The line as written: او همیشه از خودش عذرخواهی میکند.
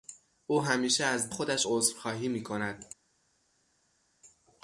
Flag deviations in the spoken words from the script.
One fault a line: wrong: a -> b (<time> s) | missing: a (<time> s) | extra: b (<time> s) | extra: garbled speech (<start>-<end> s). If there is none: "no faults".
no faults